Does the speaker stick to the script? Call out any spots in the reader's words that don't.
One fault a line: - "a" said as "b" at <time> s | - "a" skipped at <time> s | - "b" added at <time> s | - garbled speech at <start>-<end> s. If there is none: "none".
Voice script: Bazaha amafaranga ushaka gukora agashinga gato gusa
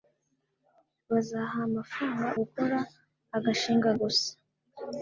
- "ushaka" skipped at 2.3 s
- "gato" skipped at 3.9 s